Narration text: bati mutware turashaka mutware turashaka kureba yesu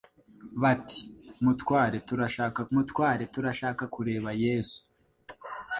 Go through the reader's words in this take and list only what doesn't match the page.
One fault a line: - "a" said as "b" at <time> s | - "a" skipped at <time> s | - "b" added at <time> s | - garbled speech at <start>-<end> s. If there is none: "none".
none